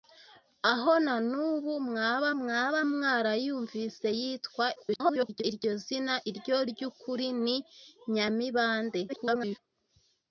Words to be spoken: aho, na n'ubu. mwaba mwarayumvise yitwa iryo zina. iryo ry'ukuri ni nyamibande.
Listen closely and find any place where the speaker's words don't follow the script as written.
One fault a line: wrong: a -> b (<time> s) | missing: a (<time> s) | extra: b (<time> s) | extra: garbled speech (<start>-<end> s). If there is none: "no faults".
extra: mwaba (2.4 s)
extra: garbled speech (4.8-5.4 s)
extra: garbled speech (9.1-9.6 s)